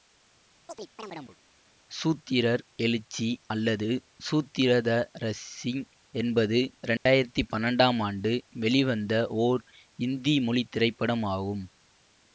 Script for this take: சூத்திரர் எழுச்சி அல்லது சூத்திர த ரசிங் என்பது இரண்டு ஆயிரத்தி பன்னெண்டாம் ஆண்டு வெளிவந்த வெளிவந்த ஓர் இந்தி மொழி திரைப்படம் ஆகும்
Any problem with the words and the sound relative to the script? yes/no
yes